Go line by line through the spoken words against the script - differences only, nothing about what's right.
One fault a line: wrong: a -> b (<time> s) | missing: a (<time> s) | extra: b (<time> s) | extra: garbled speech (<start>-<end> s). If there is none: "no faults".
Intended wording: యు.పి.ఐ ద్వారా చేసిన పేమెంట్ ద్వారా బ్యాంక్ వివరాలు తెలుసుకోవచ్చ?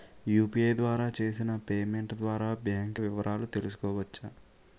no faults